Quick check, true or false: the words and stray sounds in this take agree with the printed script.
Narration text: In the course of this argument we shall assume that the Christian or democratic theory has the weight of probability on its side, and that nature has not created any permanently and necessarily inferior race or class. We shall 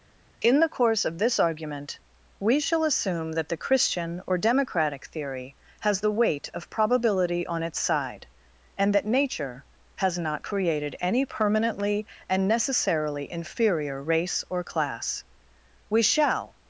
true